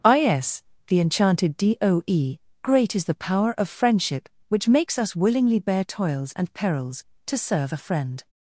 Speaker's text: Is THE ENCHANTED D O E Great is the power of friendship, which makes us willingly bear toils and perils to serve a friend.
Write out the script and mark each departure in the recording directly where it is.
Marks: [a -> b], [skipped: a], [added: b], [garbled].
Is THE ENCHANTED D O E Great is the power of friendship, which makes us willingly bear toils and perils to serve a friend.